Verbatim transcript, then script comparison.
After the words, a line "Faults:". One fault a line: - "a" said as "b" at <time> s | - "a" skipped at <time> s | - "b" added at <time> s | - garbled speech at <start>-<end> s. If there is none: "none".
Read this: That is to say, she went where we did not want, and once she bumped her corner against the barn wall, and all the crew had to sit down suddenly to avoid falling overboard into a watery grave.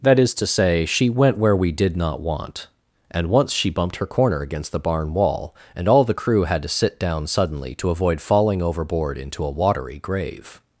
That is to say, she went where we did not want, and once she bumped her corner against the barn wall, and all the crew had to sit down suddenly to avoid falling overboard into a watery grave.
Faults:
none